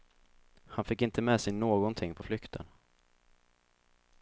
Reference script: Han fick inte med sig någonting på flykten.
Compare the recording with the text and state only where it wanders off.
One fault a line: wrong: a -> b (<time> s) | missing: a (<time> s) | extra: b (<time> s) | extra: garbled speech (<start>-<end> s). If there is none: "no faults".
no faults